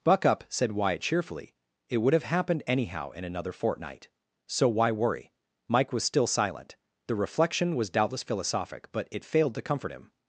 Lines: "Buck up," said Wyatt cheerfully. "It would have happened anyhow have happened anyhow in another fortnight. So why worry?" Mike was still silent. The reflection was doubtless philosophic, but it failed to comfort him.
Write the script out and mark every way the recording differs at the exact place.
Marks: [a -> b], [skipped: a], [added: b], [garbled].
"Buck up," said Wyatt cheerfully. "It would have happened anyhow [skipped: have happened anyhow] in another fortnight. So why worry?" Mike was still silent. The reflection was doubtless philosophic, but it failed to comfort him.